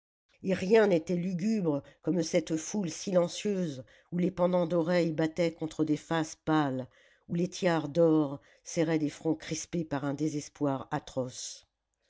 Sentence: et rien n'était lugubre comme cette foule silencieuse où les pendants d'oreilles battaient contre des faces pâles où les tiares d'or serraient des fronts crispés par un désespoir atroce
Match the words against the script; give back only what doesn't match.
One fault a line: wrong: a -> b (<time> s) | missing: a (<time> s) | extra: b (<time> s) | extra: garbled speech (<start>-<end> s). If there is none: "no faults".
no faults